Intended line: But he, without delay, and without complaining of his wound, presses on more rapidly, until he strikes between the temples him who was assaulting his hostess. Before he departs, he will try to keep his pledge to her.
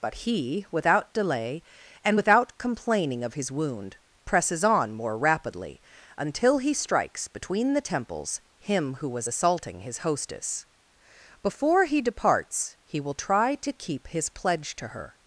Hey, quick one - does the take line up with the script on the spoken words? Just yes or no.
yes